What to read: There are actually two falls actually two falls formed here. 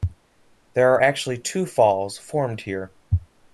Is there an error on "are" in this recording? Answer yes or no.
no